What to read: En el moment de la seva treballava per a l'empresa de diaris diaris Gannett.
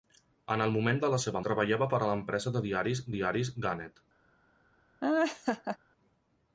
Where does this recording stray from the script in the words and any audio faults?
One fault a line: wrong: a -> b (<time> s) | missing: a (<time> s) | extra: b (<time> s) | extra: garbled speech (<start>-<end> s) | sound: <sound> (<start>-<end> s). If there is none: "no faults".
sound: laugh (5.0-5.8 s)